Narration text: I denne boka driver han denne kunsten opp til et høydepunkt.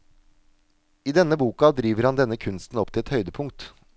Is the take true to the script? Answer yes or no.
yes